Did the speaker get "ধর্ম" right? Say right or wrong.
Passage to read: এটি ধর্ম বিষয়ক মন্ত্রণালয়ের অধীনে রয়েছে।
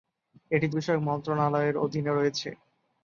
wrong